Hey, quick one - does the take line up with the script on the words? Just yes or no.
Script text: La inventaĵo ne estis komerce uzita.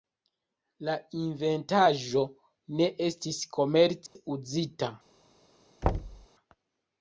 yes